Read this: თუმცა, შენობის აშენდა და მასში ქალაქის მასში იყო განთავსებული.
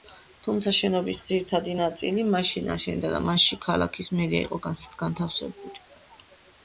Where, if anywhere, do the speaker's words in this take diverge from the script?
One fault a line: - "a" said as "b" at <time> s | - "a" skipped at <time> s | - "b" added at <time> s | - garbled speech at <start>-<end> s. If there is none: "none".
- "ძირითადი ნაწილი მაშინ" added at 1.3 s
- "მასში" said as "მერია" at 4.2 s